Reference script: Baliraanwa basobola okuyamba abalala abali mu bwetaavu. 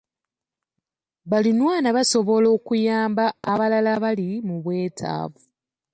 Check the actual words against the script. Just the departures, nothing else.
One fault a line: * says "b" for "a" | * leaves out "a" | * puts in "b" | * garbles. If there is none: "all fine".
all fine